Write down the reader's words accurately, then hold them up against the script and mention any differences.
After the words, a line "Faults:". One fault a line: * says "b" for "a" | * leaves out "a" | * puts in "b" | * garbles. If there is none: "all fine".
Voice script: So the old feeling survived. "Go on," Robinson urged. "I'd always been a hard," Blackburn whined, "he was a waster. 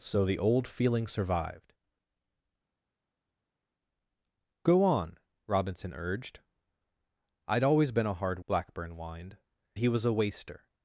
So the old feeling survived. "Go on," Robinson urged. "I'd always been a hard," Blackburn whined, "he was a waster.
Faults:
all fine